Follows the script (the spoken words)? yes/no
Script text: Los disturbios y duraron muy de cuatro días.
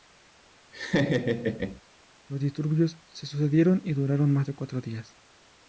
no